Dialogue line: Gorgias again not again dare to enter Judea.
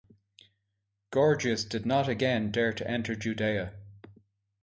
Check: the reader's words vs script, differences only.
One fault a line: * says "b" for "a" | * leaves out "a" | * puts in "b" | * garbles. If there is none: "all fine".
* says "did" for "again"